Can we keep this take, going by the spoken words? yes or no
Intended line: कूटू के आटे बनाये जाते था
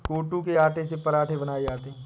no